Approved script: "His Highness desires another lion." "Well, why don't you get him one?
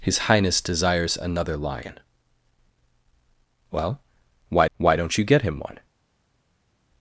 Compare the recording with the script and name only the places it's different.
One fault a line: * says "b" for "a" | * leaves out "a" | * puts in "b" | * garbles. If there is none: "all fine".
* puts in "why"